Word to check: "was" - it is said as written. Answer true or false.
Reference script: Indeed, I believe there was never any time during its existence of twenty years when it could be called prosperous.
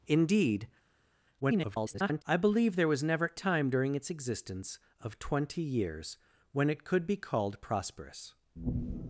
true